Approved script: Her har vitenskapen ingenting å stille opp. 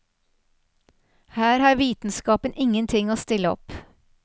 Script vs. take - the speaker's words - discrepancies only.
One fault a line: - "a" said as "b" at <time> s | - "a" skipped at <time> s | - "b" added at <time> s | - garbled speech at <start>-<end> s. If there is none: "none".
none